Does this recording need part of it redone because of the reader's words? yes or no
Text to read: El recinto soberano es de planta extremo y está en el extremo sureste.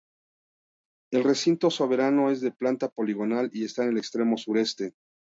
yes